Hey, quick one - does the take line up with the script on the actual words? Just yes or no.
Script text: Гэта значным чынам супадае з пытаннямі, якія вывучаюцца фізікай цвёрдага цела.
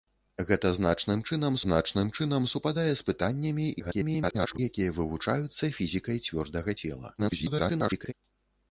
no